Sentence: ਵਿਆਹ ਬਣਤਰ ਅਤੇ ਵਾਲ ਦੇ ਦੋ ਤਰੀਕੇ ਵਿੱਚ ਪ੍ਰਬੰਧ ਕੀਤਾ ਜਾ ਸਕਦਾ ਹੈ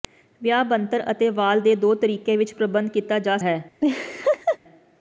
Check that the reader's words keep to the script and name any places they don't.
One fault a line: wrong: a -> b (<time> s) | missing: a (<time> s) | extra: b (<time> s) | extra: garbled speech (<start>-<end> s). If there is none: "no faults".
missing: ਸਕਦਾ (3.4 s)